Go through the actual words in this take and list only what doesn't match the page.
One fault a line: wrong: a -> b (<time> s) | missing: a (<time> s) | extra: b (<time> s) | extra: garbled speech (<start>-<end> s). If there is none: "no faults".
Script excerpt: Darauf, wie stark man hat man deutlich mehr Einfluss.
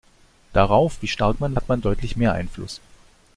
no faults